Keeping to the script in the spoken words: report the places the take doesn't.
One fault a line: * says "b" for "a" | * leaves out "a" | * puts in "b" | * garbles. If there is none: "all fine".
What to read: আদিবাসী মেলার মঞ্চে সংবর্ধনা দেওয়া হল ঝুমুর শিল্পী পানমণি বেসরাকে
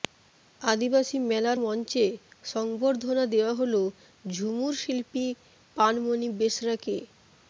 all fine